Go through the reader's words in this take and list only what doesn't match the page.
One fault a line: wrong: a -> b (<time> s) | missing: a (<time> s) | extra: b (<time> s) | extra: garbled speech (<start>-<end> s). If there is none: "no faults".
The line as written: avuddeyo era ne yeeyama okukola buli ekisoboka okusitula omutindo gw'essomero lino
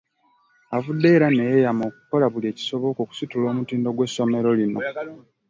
no faults